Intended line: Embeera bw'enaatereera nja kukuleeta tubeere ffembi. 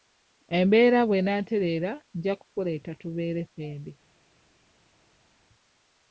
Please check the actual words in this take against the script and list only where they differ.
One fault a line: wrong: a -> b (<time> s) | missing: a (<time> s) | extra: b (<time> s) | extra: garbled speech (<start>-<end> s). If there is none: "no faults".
no faults